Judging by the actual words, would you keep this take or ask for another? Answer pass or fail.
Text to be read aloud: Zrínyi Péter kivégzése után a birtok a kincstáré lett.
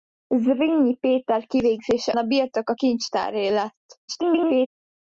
fail